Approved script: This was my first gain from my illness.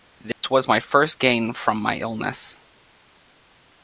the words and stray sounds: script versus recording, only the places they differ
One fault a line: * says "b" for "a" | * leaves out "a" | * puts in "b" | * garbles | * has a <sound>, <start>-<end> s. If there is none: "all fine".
* has a dropout, 0.3-0.4 s